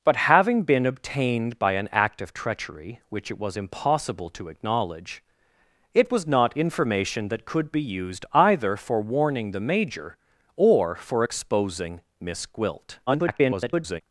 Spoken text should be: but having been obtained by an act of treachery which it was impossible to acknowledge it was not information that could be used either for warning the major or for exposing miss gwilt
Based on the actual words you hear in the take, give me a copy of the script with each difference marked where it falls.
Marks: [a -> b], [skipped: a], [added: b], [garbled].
but having been obtained by an act of treachery which it was impossible to acknowledge it was not information that could be used either for warning the major or for exposing miss gwilt [garbled]